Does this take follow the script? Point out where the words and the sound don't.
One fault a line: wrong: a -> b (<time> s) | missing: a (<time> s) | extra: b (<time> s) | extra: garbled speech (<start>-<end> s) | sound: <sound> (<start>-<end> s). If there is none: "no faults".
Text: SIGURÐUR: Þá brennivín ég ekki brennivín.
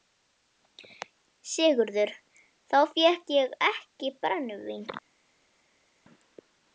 wrong: brennivín -> fékk (2.9 s)